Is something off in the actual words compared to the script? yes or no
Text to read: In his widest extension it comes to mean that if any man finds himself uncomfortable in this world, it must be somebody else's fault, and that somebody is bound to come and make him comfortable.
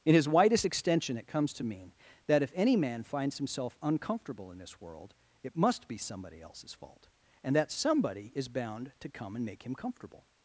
no